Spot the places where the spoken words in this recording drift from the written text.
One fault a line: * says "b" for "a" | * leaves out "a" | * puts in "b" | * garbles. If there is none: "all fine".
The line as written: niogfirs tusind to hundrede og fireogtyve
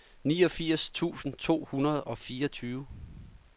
all fine